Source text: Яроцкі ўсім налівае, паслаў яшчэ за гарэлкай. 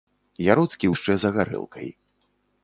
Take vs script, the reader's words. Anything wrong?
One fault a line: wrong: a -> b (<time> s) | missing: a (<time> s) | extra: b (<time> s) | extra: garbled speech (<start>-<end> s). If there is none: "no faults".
missing: ўсім налівае паслаў (0.9 s)